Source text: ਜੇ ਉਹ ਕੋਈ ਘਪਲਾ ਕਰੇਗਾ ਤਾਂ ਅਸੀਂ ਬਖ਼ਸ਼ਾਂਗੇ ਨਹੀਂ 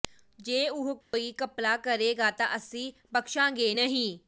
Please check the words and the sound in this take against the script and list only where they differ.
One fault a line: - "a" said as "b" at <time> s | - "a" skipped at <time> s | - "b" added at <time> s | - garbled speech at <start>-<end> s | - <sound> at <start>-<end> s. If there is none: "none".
- dropout at 1.0-1.1 s